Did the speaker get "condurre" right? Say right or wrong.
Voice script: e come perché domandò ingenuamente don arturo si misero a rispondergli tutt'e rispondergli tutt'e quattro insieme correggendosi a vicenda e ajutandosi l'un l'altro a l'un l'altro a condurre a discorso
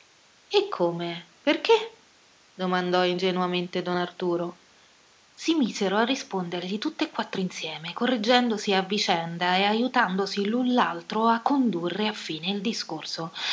wrong